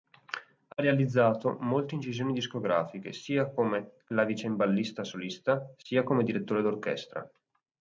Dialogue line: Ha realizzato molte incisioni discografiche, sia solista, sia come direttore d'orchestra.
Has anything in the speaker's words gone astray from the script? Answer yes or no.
yes